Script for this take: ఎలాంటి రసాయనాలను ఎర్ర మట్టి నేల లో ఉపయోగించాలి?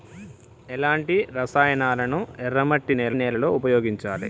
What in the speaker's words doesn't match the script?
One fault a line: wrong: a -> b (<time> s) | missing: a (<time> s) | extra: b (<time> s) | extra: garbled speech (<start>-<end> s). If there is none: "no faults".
extra: నేల (3.1 s)